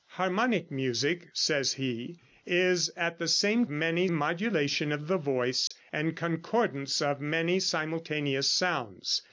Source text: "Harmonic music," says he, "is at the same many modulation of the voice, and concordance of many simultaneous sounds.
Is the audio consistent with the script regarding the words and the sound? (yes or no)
no